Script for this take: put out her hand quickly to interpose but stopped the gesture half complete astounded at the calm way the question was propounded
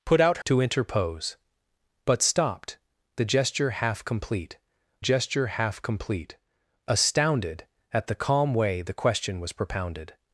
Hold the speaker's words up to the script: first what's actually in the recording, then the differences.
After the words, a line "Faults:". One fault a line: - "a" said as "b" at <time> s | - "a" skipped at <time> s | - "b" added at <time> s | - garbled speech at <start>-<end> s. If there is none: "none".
put out to interpose but stopped the gesture half complete gesture half complete astounded at the calm way the question was propounded
Faults:
- "her hand quickly" skipped at 0.4 s
- "gesture half complete" added at 5.0 s